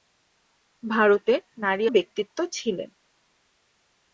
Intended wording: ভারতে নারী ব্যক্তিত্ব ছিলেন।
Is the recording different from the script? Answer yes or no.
no